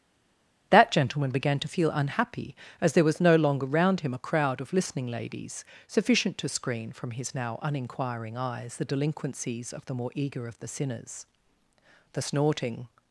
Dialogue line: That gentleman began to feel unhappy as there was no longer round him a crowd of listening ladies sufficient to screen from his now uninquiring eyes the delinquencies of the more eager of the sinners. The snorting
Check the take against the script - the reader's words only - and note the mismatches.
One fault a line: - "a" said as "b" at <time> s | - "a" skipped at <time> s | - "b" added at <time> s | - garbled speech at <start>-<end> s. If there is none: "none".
none